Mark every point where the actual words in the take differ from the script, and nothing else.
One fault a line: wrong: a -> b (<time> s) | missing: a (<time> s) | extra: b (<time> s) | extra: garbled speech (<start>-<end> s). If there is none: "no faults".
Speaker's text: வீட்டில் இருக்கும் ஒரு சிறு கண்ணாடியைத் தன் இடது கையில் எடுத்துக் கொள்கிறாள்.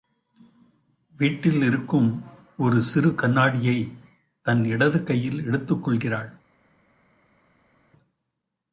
no faults